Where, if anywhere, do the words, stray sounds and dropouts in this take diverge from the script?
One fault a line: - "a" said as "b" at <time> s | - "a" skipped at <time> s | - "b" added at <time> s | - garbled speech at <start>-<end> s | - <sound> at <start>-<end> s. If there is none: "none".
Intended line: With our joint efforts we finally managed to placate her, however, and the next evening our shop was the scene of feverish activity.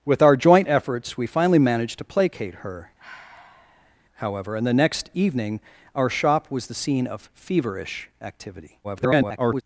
- sigh at 3.0-4.0 s
- garbled speech at 8.8-9.6 s